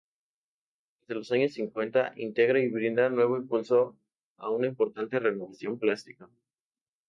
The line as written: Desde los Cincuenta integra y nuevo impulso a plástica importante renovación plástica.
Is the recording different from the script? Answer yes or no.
yes